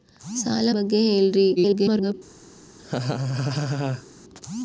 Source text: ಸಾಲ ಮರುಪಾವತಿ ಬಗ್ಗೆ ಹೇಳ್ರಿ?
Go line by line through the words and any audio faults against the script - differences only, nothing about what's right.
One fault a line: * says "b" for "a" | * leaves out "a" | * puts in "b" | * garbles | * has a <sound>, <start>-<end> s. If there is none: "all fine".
* leaves out "ಮರುಪಾವತಿ"
* garbles
* has a laugh, 2.8-4.1 s